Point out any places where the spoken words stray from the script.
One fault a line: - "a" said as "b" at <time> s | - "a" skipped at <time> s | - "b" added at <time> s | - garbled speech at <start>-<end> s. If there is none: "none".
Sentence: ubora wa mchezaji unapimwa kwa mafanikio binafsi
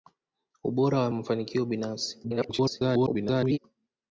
- "mchezaji unapimwa kwa" skipped at 1.1 s
- garbled speech at 2.2-3.6 s